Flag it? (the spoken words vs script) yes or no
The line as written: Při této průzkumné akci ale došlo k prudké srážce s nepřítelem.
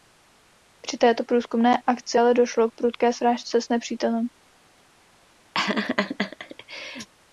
no